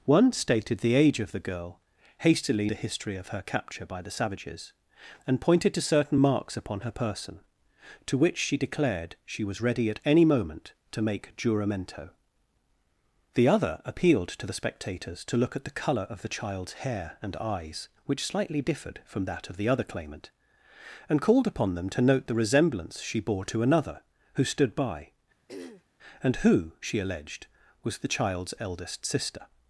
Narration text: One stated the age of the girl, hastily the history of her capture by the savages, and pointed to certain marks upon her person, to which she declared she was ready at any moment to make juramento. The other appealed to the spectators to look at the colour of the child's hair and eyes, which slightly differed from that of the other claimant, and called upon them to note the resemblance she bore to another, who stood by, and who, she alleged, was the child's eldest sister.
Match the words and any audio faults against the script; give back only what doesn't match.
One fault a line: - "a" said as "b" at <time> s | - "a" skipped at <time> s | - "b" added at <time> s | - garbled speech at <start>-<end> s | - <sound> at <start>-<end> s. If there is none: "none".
- throat clearing at 25.5-25.8 s